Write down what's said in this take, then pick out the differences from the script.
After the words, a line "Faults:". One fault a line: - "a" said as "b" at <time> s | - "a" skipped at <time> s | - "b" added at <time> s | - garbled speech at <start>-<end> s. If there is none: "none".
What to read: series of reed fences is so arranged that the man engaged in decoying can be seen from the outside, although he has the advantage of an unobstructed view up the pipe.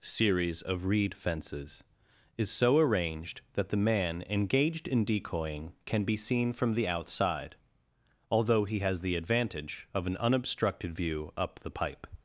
series of reed fences is so arranged that the man engaged in decoying can be seen from the outside, although he has the advantage of an unobstructed view up the pipe.
Faults:
none